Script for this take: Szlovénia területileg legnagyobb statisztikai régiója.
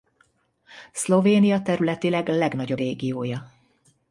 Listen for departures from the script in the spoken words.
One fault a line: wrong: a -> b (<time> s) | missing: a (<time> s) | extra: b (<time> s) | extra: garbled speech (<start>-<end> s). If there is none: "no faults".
missing: statisztikai (2.8 s)